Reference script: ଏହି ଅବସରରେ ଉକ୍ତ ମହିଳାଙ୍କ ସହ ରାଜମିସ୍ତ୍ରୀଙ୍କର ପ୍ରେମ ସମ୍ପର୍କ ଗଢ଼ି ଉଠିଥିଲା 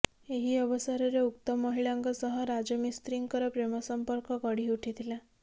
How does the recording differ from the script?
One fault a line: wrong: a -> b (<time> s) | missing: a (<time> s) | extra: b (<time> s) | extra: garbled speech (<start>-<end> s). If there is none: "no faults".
no faults